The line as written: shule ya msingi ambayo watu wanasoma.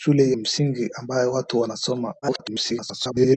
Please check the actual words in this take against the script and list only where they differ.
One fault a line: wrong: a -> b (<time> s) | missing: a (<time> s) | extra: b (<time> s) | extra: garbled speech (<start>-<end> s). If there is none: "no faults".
missing: ya (0.3 s)
extra: garbled speech (2.2-3.4 s)